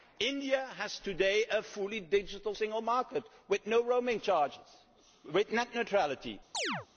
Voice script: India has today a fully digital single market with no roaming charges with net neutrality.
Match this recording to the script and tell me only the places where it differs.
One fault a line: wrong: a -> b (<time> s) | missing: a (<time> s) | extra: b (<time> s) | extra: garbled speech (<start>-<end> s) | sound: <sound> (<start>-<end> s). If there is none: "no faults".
sound: chirp (6.5-6.9 s)